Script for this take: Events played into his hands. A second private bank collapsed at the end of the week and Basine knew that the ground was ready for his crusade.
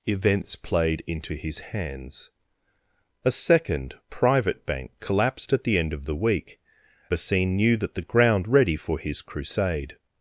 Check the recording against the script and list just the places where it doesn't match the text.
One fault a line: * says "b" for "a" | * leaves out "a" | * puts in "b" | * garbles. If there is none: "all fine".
* leaves out "and"
* leaves out "was"